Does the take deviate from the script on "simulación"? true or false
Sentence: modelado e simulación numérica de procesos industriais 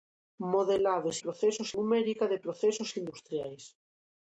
true